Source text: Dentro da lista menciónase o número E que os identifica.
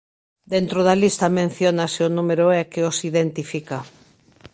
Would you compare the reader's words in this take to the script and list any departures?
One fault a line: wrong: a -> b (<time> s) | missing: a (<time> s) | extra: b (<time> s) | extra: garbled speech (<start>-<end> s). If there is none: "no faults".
no faults